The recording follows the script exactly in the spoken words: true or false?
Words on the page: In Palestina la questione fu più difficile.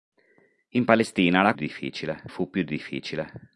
false